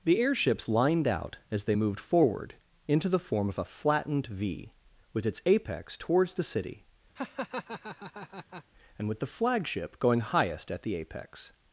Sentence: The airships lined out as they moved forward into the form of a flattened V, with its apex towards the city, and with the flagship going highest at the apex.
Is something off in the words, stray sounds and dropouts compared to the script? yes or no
yes